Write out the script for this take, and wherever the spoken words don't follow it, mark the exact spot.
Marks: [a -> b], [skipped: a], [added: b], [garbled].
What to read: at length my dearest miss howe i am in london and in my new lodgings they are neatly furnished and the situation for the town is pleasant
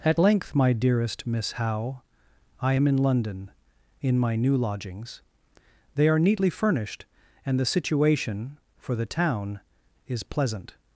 at length my dearest miss howe i am in london [skipped: and] in my new lodgings they are neatly furnished and the situation for the town is pleasant